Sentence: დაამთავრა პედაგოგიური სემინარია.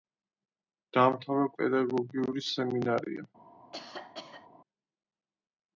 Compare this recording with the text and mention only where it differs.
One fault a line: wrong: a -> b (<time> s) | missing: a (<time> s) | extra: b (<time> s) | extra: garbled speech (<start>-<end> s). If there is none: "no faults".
no faults